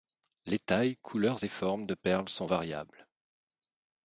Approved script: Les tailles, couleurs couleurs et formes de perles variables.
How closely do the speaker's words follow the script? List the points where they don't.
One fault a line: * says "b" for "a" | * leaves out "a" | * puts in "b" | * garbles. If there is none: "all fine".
* leaves out "couleurs"
* puts in "sont"